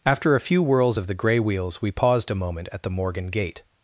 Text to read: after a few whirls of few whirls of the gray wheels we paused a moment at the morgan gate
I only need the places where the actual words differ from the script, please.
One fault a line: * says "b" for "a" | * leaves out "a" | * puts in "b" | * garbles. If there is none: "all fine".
* leaves out "few whirls of"